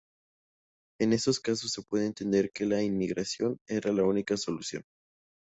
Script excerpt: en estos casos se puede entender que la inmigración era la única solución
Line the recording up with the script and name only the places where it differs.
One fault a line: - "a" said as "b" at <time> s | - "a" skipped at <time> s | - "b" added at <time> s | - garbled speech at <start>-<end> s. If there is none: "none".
none